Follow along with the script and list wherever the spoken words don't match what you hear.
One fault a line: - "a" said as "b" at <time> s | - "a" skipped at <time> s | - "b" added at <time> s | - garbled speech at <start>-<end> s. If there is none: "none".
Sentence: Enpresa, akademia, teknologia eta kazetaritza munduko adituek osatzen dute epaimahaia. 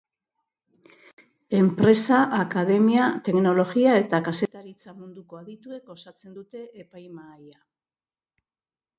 none